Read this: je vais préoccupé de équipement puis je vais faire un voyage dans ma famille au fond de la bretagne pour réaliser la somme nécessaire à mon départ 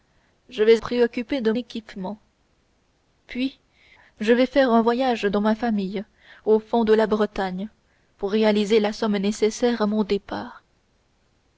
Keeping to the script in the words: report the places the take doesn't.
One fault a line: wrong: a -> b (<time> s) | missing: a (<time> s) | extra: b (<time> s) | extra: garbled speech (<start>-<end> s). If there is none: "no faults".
no faults